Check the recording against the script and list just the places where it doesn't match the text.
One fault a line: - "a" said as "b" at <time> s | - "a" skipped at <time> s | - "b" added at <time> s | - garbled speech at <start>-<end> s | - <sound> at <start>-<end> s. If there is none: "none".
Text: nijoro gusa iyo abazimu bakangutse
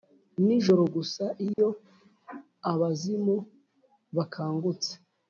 - dropout at 1.5-1.6 s